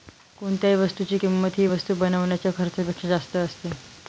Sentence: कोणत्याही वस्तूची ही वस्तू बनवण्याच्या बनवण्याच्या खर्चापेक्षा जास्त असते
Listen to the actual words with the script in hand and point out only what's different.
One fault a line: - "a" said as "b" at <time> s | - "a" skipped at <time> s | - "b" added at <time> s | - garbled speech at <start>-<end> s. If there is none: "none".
- "किंमत" added at 1.1 s
- "बनवण्याच्या" skipped at 2.5 s